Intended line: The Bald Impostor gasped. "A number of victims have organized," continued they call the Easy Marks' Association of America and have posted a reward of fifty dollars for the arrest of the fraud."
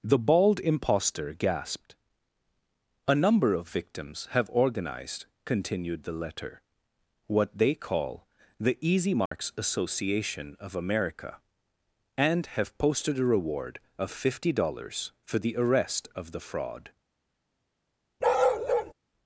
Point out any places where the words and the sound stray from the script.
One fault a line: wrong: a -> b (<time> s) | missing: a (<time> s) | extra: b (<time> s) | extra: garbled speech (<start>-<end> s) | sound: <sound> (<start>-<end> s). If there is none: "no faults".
extra: the letter what (6.0 s)
sound: dropout (9.3-9.3 s)
sound: bark (18.2-18.9 s)